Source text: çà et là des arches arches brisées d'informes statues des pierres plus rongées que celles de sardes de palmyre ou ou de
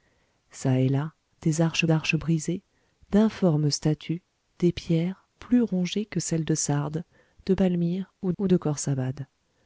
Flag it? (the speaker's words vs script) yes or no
no